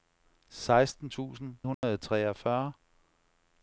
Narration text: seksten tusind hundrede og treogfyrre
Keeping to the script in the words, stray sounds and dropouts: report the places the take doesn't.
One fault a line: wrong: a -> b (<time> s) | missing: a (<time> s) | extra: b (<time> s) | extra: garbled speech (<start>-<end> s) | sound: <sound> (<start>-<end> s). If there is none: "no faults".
sound: dropout (1.7-1.8 s)